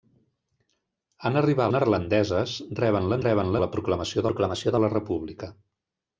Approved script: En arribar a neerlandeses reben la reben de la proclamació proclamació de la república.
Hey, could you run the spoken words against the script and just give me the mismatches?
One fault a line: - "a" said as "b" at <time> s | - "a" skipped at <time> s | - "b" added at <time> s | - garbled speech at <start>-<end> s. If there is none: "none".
none